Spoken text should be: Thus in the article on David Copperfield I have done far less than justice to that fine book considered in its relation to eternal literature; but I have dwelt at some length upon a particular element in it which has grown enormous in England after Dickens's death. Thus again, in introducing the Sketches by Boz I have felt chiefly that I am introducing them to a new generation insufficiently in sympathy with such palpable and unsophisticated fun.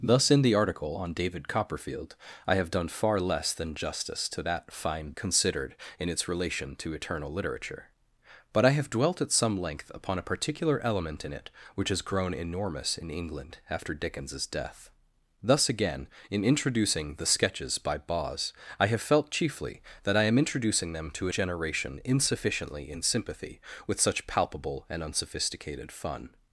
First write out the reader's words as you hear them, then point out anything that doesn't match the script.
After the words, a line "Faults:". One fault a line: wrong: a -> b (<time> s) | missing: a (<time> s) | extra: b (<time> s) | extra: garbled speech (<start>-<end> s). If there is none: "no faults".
Thus in the article on David Copperfield I have done far less than justice to that fine considered in its relation to eternal literature; but I have dwelt at some length upon a particular element in it which has grown enormous in England after Dickens's death. Thus again, in introducing the Sketches by Boz I have felt chiefly that I am introducing them to a generation insufficiently in sympathy with such palpable and unsophisticated fun.
Faults:
missing: book (5.1 s)
missing: new (21.3 s)